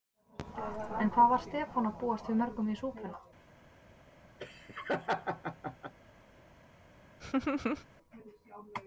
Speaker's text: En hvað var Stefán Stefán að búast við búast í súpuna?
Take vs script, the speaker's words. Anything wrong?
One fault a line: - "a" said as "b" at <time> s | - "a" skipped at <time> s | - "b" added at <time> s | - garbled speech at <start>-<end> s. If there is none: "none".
- "Stefán" skipped at 1.9 s
- "búast" said as "mörgum" at 2.4 s